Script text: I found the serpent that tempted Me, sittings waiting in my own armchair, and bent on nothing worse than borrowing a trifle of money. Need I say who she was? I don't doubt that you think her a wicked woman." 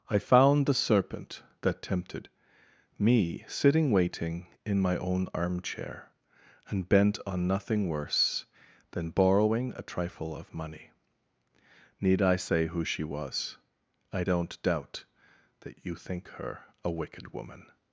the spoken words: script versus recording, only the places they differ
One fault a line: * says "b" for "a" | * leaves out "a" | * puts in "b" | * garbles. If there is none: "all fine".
* says "sitting" for "sittings"